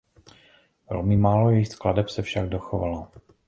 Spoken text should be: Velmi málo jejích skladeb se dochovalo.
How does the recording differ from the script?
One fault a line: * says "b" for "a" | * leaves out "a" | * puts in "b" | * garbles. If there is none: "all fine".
* puts in "však"